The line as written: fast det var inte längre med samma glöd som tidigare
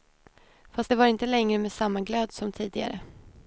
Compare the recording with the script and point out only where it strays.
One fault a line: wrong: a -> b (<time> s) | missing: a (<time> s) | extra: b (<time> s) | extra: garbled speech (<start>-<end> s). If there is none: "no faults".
no faults